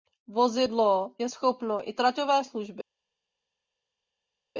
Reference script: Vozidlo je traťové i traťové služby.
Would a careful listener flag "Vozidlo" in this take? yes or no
no